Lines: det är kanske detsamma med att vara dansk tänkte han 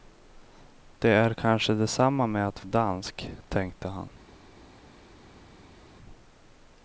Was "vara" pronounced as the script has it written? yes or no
no